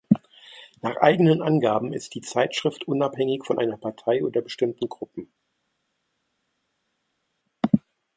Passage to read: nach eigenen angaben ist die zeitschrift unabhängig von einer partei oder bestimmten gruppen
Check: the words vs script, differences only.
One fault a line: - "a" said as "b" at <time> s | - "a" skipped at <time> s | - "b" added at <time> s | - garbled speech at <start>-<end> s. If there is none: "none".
none